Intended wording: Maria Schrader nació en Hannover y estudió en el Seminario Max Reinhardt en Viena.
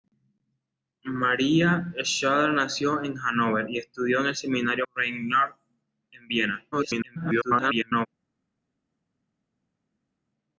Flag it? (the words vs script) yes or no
yes